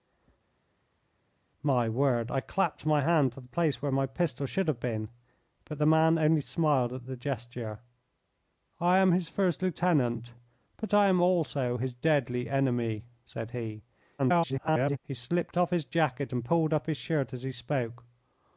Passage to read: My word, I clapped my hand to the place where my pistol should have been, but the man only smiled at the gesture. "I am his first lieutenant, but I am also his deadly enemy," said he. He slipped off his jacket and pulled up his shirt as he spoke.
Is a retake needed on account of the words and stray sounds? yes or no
yes